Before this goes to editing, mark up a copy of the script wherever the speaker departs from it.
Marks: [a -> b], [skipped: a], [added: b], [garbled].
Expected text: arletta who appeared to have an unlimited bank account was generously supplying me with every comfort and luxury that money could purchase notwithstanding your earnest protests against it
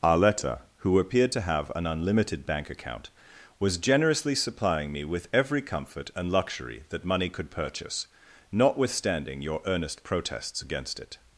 arletta who appeared to have an unlimited bank account was generously supplying me with every comfort and luxury that money could purchase notwithstanding your earnest protests against it